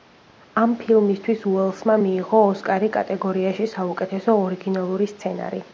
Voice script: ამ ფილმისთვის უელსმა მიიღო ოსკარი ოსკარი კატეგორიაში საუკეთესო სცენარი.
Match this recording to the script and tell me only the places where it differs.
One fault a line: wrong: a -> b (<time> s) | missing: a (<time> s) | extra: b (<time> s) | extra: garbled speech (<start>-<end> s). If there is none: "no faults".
missing: ოსკარი (2.9 s)
extra: ორიგინალური (4.5 s)